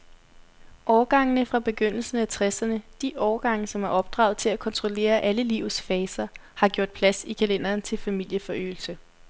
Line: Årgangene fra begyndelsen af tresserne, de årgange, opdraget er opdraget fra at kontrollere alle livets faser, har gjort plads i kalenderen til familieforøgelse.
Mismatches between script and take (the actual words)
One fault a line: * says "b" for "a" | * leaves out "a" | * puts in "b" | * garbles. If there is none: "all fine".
* says "som" for "opdraget"
* says "til" for "fra"